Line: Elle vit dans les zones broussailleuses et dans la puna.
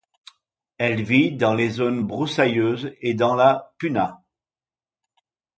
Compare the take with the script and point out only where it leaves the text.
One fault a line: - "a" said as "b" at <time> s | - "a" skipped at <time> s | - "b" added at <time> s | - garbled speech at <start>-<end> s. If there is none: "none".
none